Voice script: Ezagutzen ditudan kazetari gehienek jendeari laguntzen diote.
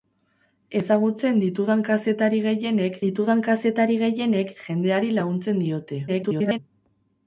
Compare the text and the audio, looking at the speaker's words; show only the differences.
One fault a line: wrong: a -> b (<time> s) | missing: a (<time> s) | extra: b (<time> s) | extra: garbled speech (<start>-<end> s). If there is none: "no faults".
extra: ditudan kazetari gehienek (3.0 s)
extra: garbled speech (6.1-6.6 s)